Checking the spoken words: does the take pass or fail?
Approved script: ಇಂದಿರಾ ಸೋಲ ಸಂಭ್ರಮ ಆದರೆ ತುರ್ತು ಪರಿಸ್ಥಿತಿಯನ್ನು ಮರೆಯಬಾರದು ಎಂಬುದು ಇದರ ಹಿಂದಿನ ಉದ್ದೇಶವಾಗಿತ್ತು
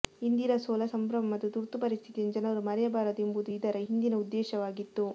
fail